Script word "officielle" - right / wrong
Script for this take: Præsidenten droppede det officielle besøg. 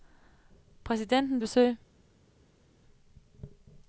wrong